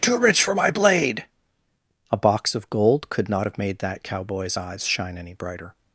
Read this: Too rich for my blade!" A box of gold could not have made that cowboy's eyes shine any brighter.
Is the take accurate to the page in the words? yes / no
yes